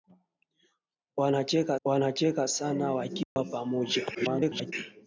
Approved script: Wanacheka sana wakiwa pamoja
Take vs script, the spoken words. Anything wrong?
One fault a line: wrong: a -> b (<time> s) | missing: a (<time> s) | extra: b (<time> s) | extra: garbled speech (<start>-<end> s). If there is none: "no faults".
extra: wanacheka (1.8 s)
extra: garbled speech (4.1-4.7 s)